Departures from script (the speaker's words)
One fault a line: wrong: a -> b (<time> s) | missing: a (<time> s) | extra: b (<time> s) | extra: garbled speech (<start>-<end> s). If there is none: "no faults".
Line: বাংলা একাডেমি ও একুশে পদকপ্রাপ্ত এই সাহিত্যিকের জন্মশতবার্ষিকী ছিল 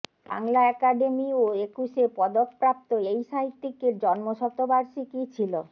no faults